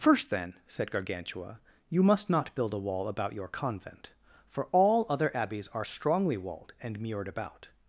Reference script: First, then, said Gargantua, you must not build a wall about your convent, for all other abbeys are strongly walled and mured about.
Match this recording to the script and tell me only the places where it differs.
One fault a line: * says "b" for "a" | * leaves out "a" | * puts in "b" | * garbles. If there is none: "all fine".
all fine